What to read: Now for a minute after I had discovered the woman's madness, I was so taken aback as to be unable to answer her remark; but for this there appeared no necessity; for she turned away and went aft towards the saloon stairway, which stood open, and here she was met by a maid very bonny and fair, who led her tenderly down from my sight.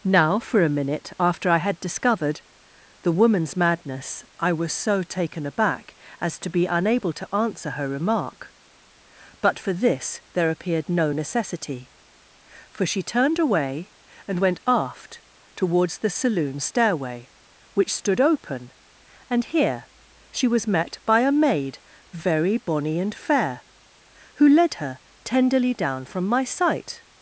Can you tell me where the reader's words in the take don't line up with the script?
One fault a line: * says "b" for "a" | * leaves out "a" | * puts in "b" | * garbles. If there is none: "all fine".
all fine